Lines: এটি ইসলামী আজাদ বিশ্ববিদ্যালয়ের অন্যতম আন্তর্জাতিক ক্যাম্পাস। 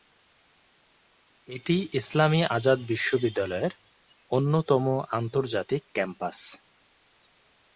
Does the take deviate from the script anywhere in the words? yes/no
no